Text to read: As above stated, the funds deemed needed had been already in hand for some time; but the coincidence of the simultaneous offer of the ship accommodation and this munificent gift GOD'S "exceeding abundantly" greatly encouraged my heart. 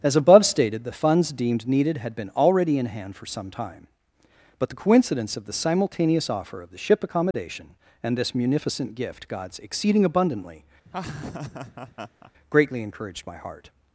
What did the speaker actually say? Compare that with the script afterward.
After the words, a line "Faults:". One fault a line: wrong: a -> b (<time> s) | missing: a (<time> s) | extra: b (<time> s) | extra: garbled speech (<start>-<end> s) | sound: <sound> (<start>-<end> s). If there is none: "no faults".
As above stated, the funds deemed needed had been already in hand for some time; but the coincidence of the simultaneous offer of the ship accommodation and this munificent gift GOD'S "exceeding abundantly" greatly encouraged my heart.
Faults:
sound: dropout (7.3-7.3 s)
sound: laugh (10.9-12.3 s)